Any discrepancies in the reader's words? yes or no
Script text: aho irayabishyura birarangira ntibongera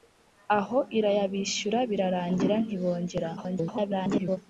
yes